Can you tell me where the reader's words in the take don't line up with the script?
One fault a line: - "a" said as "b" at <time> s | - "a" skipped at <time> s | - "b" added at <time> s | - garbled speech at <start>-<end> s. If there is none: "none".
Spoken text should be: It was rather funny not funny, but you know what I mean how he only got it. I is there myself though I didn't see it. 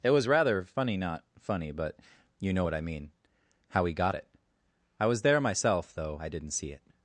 - "only" skipped at 3.9 s
- "is" said as "was" at 5.1 s